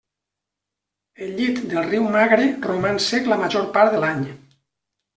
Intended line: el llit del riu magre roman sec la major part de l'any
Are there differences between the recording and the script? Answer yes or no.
no